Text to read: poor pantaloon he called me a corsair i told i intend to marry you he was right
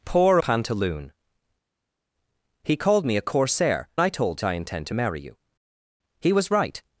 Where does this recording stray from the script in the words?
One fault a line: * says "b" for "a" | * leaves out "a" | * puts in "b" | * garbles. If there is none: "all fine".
all fine